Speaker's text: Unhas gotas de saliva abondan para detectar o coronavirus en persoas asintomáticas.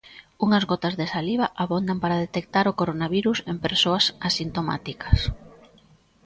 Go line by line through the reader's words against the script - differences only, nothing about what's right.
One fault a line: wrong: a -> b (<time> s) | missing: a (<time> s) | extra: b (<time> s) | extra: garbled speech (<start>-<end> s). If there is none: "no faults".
no faults